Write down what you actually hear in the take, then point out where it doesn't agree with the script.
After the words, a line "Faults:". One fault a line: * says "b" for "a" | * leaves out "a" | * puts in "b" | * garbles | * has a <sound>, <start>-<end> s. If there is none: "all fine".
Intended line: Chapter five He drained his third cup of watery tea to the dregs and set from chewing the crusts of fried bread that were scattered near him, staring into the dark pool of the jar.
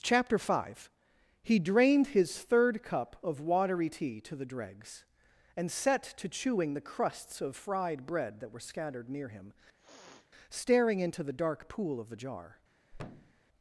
Chapter five He drained his third cup of watery tea to the dregs and set to chewing the crusts of fried bread that were scattered near him, staring into the dark pool of the jar.
Faults:
* says "to" for "from"
* has a sniff, 9.8-10.3 s
* has a thud, 12.9-13.4 s